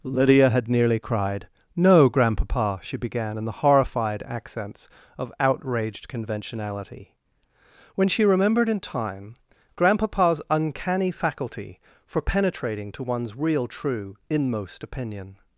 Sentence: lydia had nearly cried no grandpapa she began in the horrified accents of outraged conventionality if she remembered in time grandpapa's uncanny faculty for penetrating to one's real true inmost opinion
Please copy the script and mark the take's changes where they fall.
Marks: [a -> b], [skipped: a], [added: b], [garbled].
lydia had nearly cried no grandpapa she began in the horrified accents of outraged conventionality [if -> when] she remembered in time grandpapa's uncanny faculty for penetrating to one's real true inmost opinion